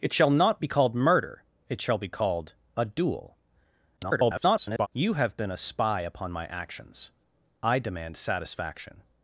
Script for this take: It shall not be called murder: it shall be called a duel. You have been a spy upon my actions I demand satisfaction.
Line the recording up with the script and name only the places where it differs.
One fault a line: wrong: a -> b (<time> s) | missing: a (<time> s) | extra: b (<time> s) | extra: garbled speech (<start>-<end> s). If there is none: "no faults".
extra: garbled speech (4.0-4.9 s)